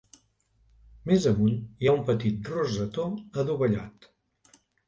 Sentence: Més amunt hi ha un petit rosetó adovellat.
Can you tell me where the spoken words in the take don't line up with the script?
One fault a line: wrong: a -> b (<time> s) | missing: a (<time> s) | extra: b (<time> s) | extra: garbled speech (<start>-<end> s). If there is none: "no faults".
no faults